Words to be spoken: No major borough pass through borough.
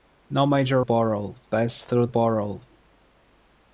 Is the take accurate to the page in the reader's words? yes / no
yes